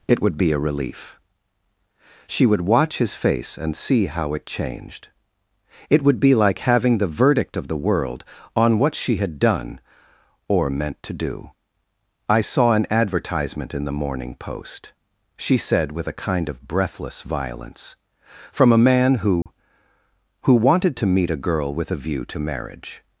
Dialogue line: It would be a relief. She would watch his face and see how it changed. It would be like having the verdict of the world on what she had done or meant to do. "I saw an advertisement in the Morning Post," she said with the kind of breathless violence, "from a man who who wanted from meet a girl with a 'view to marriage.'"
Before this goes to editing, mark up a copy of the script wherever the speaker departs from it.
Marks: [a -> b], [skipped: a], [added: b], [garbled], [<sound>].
It would be a relief. She would watch his face and see how it changed. It would be like having the verdict of the world on what she had done or meant to do. "I saw an advertisement in the Morning Post," she said with [the -> a] kind of breathless violence, "from a man who [dropout] who wanted [from -> to] meet a girl with a 'view to marriage.'"